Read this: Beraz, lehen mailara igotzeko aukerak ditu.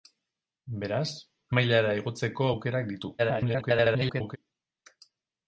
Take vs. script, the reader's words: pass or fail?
fail